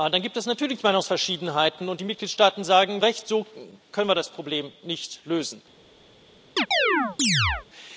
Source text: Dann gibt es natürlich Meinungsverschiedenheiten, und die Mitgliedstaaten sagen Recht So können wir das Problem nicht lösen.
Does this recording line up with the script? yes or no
yes